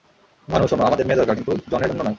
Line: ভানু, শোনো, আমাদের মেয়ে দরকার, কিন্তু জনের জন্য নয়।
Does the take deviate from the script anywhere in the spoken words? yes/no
no